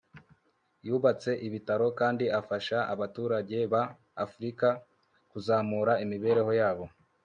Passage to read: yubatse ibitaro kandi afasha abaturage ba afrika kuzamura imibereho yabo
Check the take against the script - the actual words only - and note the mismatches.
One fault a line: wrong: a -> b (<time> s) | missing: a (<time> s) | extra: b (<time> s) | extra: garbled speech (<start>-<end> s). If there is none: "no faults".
no faults